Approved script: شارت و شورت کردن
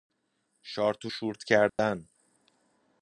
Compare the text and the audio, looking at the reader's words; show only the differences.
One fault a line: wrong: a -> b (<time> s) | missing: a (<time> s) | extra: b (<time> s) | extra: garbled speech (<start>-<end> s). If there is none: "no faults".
no faults